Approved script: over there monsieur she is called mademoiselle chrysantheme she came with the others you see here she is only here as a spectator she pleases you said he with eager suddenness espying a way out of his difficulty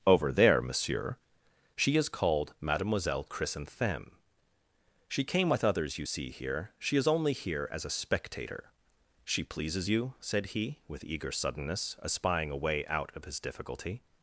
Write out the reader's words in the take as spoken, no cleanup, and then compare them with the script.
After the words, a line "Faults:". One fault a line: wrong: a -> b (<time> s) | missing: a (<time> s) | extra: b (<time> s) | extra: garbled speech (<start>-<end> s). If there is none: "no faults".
over there monsieur she is called mademoiselle chrysantheme she came with others you see here she is only here as a spectator she pleases you said he with eager suddenness espying a way out of his difficulty
Faults:
missing: the (5.6 s)